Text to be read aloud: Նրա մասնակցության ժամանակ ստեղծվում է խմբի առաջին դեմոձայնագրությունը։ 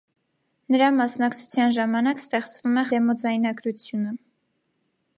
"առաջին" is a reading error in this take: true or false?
true